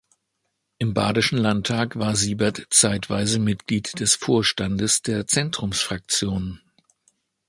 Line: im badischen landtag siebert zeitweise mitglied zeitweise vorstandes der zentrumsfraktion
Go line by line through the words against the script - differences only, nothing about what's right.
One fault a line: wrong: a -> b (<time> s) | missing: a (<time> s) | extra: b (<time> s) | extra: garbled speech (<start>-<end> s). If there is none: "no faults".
extra: war (1.9 s)
wrong: zeitweise -> des (4.0 s)